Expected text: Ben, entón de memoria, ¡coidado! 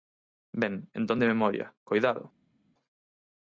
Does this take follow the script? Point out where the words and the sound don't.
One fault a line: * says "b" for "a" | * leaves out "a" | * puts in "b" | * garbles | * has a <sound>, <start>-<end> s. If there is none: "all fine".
all fine